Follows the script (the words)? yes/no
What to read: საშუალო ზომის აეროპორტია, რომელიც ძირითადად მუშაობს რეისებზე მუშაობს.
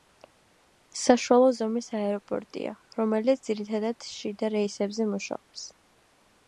no